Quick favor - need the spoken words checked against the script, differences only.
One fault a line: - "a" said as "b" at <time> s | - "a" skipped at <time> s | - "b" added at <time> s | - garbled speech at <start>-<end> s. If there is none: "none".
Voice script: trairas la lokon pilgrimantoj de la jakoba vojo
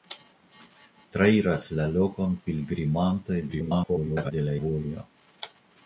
- garbled speech at 3.5-4.3 s
- "jakoba" skipped at 4.6 s